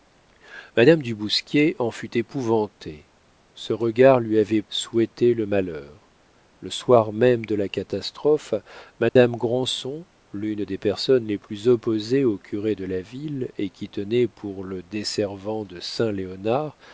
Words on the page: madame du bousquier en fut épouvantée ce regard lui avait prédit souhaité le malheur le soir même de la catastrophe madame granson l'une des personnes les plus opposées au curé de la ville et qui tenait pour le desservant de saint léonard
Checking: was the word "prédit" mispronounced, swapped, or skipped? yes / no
yes